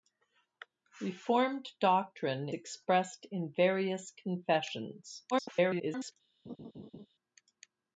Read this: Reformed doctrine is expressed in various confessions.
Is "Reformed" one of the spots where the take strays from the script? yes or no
no